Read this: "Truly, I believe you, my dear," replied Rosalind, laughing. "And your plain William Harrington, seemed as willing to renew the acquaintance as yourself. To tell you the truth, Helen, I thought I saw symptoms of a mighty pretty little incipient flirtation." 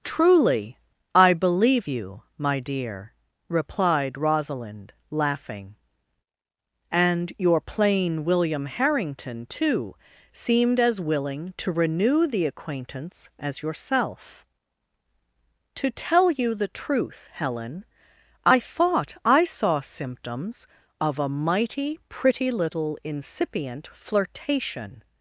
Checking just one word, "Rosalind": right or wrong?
right